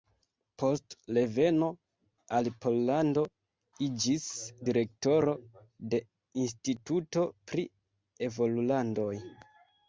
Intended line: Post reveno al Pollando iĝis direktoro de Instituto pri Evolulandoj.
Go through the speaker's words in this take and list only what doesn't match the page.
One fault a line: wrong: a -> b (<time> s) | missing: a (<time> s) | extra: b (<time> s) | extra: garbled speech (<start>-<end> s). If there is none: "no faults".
no faults